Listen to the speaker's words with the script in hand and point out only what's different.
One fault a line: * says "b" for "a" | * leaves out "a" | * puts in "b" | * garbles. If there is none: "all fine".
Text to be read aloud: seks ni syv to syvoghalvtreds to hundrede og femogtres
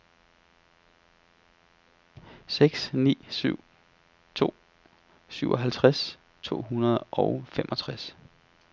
all fine